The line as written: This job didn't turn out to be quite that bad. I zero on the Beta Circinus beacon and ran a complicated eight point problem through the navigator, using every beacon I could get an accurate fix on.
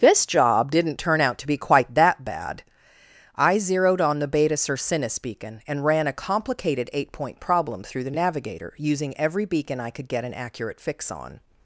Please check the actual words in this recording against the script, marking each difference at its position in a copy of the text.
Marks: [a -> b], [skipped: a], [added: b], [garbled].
This job didn't turn out to be quite that bad. I [zero -> zeroed] on the Beta Circinus beacon and ran a complicated eight point problem through the navigator, using every beacon I could get an accurate fix on.